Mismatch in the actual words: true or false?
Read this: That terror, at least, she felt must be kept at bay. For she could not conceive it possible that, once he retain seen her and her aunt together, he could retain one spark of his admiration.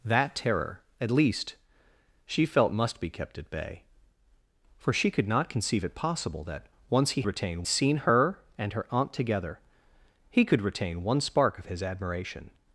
false